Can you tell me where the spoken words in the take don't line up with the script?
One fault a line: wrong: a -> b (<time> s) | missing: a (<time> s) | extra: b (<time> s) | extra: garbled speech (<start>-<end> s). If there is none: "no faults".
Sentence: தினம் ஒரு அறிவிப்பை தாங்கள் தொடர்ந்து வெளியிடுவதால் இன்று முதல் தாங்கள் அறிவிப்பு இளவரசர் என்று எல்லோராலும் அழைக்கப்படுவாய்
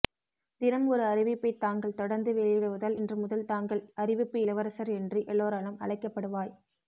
no faults